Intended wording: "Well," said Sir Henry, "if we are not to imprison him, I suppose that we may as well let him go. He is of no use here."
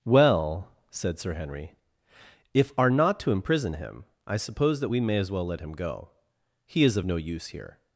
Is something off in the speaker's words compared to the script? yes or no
yes